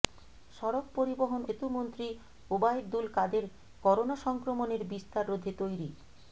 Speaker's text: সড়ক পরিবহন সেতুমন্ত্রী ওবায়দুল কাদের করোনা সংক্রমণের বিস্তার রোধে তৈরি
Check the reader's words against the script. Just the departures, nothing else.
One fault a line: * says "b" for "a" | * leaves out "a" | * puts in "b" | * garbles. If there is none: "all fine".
all fine